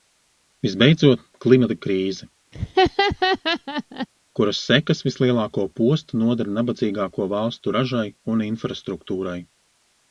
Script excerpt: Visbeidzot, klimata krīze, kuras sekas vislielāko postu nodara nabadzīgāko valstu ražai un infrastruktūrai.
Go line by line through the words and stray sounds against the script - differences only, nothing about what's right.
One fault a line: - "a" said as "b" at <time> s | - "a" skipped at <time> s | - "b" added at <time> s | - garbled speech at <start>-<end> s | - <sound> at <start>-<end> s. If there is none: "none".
- laugh at 2.5-4.1 s